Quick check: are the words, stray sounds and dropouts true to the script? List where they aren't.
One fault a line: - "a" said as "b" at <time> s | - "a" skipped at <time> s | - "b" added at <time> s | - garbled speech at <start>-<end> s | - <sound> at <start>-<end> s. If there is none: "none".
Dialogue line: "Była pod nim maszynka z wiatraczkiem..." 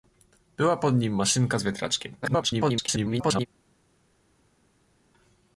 - garbled speech at 2.2-3.5 s